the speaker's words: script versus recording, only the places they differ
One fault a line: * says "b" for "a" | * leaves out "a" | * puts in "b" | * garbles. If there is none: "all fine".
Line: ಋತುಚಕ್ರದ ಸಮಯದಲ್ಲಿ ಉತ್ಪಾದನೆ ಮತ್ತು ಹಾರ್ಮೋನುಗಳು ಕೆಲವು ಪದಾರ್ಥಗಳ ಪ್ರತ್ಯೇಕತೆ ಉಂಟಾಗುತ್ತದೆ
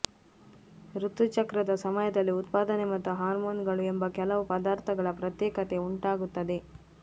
* puts in "ಎಂಬ"